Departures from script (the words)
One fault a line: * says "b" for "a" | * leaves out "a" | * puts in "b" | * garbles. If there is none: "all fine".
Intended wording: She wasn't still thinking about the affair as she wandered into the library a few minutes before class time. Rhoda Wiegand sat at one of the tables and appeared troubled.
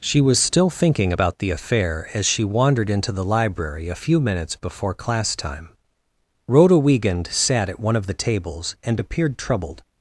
* says "was" for "wasn't"